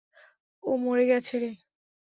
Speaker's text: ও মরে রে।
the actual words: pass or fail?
fail